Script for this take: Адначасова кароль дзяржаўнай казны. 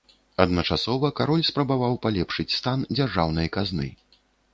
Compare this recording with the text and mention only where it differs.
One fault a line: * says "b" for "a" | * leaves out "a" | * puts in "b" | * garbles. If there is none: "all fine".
* puts in "спрабаваў палепшыць стан"